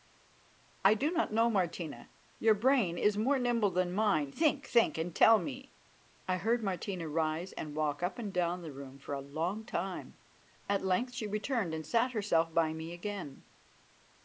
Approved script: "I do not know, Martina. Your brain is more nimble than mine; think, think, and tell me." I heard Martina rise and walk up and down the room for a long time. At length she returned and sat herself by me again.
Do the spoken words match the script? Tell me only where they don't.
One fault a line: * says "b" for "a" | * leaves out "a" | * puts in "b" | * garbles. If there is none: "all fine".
all fine